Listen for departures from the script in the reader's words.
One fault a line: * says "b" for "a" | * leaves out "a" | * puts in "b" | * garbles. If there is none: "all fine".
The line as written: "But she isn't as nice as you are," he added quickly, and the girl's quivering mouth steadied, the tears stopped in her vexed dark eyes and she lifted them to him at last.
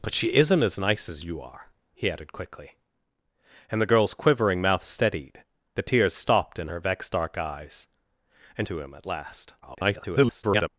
* leaves out "she lifted them"
* garbles